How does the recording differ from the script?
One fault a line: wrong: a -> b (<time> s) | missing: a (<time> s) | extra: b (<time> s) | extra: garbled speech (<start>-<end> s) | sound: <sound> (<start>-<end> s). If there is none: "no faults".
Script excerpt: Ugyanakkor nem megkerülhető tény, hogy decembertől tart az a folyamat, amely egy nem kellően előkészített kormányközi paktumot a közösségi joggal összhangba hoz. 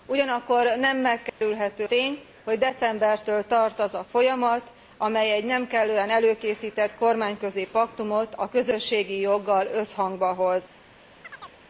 sound: dropout (1.3-1.4 s)
sound: chirp (11.2-11.6 s)